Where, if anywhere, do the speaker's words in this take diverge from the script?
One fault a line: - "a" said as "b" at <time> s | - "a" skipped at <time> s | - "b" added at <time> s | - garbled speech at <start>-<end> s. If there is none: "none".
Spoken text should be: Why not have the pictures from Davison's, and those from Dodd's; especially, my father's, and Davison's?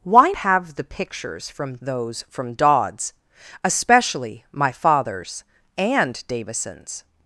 - "not" skipped at 0.3 s
- "Davison's and" skipped at 1.8 s